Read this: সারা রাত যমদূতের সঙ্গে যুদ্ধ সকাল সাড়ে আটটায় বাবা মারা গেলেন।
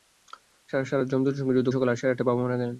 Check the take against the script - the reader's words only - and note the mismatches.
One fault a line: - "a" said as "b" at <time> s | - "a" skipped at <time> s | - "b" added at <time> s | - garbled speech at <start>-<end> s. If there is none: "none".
none